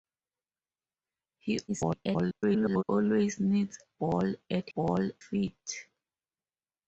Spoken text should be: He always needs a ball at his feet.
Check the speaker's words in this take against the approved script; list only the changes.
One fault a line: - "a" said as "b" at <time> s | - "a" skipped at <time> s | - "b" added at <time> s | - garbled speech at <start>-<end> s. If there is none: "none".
- garbled speech at 1.7-2.8 s
- "a" skipped at 3.8 s
- "his" said as "ball" at 4.7 s